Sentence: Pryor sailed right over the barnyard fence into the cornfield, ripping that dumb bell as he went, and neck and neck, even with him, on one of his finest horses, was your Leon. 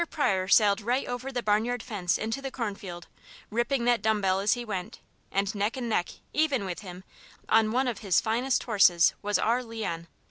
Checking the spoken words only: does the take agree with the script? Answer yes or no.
no